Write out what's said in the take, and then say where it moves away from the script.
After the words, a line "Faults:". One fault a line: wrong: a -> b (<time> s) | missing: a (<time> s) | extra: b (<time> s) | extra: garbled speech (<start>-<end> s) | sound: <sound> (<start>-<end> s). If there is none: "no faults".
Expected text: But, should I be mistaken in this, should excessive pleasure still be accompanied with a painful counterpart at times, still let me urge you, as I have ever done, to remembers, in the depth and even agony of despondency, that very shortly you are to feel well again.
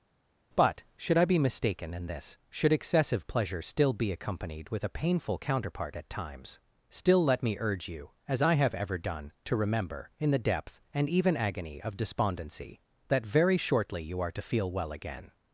But, should I be mistaken in this, should excessive pleasure still be accompanied with a painful counterpart at times, still let me urge you, as I have ever done, to remember, in the depth and even agony of despondency, that very shortly you are to feel well again.
Faults:
wrong: remembers -> remember (9.5 s)